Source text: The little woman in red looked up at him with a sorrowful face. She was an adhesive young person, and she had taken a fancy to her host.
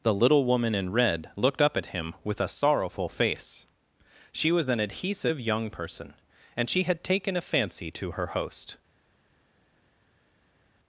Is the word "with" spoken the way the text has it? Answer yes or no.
yes